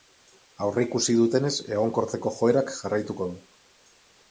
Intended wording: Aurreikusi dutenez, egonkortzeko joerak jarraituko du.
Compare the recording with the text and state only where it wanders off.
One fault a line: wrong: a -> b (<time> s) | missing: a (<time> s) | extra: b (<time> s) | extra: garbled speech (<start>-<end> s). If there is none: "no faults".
no faults